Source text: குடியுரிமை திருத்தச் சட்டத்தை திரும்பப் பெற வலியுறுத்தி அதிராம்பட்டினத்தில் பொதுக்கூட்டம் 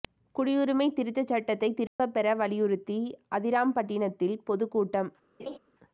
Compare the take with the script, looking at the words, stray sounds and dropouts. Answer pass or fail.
fail